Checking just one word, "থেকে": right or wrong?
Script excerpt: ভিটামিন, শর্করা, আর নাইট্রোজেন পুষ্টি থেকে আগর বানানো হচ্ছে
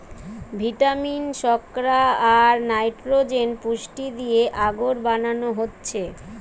wrong